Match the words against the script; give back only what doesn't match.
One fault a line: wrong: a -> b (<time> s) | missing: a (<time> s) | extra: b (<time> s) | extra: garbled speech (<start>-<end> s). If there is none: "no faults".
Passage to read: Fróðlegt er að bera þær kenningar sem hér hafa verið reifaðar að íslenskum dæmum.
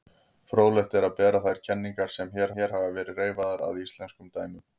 extra: hér (2.6 s)